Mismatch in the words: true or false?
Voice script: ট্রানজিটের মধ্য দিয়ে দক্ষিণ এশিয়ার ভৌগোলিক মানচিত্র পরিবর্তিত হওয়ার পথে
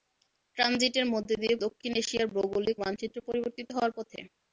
false